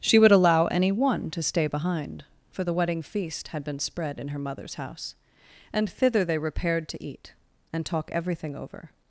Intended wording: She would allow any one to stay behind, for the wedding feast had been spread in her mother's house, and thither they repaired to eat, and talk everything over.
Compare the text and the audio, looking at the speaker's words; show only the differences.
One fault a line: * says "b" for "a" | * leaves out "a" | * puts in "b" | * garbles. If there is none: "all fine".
all fine